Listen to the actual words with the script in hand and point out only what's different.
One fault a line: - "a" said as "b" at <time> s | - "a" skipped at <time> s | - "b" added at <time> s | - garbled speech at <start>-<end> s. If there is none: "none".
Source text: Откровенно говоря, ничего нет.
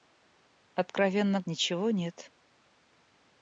- "говоря" skipped at 1.4 s